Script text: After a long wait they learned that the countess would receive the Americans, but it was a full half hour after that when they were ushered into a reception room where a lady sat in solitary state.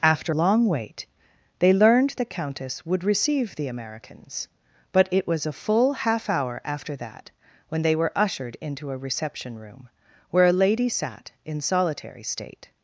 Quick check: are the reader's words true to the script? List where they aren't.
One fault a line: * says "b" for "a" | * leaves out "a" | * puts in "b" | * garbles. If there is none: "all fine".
* leaves out "a"
* leaves out "that"